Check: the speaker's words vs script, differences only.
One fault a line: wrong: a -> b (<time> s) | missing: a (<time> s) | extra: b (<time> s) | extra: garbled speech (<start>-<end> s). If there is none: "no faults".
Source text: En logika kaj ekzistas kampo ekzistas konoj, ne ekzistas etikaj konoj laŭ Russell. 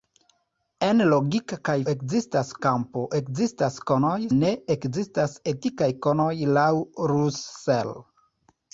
no faults